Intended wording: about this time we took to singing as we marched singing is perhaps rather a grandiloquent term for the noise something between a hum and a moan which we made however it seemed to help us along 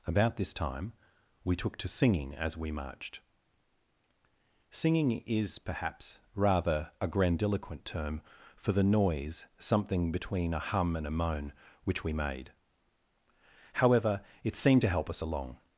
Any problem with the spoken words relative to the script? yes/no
no